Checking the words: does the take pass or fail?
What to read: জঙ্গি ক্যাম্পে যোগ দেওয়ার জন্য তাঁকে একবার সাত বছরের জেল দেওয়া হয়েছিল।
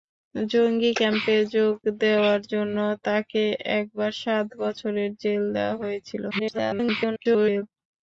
fail